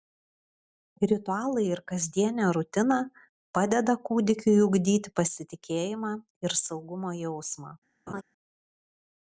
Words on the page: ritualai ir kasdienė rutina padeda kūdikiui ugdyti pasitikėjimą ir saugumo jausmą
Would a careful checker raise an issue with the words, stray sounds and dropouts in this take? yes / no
yes